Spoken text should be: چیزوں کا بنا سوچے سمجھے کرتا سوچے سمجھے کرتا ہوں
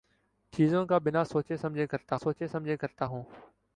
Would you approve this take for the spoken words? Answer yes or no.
yes